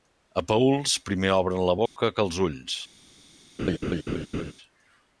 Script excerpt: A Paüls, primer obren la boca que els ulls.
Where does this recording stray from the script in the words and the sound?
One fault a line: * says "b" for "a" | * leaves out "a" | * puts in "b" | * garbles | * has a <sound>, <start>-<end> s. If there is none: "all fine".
* has a dropout, 1.9-2.0 s
* has a laugh, 3.6-4.5 s